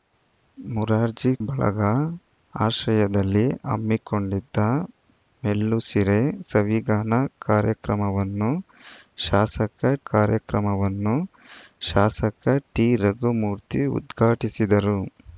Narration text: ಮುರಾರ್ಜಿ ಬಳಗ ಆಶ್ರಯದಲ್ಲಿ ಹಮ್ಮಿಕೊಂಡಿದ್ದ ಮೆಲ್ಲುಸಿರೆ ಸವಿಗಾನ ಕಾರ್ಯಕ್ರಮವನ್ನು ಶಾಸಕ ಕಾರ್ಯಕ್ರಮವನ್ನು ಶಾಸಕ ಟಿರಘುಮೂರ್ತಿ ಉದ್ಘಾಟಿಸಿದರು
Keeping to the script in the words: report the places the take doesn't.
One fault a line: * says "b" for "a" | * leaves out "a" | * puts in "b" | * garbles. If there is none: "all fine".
all fine